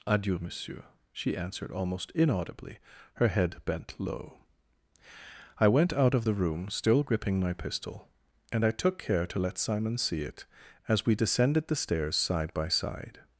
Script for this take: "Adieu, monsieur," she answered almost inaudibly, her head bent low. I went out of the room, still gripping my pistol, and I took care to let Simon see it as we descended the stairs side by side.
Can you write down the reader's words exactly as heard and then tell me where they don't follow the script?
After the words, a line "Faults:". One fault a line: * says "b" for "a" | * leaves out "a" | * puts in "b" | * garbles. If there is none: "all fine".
"Adieu, monsieur," she answered almost inaudibly, her head bent low. I went out of the room, still gripping my pistol, and I took care to let Simon see it as we descended the stairs side by side.
Faults:
all fine